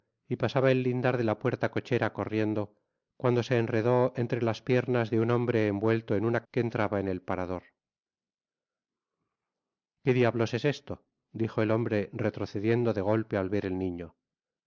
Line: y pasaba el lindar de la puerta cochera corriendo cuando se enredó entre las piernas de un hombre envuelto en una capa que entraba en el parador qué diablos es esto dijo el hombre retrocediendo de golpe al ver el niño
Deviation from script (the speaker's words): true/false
true